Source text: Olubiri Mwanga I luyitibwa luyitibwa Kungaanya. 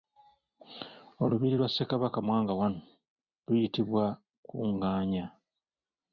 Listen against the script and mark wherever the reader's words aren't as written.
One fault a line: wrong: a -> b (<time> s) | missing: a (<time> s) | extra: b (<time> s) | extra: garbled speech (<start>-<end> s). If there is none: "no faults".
extra: lwa Ssekabaka (1.6 s)
missing: luyitibwa (4.0 s)